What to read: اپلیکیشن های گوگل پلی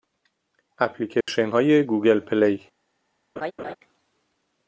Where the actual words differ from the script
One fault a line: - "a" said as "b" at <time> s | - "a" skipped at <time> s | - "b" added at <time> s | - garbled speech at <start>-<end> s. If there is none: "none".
none